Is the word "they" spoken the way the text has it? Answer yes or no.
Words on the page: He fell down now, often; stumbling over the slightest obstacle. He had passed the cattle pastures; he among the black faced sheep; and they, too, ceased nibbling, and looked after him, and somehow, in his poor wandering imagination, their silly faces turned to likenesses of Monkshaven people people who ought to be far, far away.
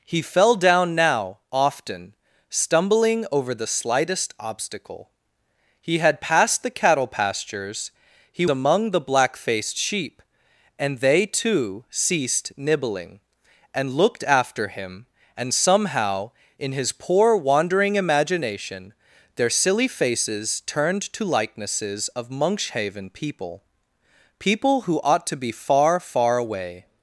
yes